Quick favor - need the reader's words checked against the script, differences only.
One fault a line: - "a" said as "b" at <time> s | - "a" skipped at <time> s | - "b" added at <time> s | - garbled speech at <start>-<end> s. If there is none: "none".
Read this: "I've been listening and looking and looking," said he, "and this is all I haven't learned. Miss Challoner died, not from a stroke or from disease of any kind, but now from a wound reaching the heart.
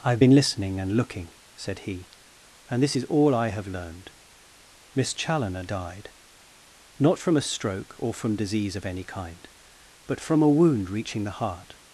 - "and looking" skipped at 1.3 s
- "haven't" said as "have" at 3.5 s
- "now" skipped at 10.2 s